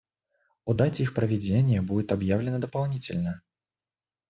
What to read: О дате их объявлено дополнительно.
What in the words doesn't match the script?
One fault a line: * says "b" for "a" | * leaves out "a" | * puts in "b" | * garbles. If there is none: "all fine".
* puts in "проведения будет"